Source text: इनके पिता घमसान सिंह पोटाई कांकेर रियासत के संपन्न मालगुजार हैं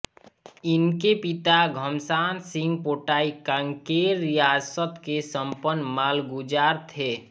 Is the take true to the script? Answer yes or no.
no